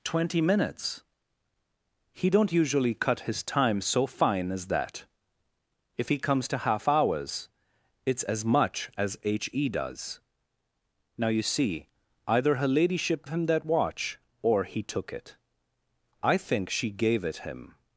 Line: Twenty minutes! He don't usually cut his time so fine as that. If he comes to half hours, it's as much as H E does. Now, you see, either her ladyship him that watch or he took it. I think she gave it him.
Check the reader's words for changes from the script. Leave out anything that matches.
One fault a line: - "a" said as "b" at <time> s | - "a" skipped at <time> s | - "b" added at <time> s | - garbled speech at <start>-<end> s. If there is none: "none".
none